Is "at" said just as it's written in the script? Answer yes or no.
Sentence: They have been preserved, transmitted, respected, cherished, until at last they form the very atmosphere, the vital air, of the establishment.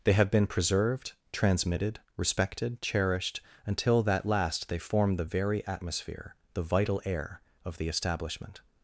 no